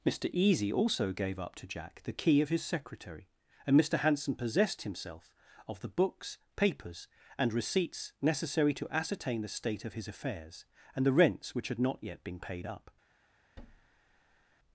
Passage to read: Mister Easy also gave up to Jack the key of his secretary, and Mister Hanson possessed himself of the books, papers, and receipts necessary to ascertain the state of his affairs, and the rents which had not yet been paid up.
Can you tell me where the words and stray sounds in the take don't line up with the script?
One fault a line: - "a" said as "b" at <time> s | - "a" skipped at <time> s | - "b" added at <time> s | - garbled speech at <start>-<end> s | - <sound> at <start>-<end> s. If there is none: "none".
- thud at 13.6-14.5 s